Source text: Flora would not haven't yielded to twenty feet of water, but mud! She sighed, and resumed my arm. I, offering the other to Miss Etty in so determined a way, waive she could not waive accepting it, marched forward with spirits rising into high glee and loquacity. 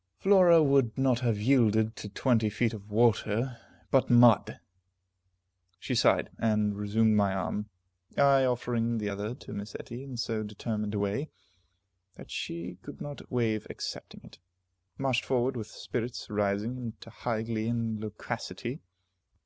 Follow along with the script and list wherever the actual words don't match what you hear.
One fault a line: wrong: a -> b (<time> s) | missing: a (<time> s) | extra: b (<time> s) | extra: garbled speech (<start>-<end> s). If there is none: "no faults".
wrong: haven't -> have (1.2 s)
wrong: waive -> that (12.2 s)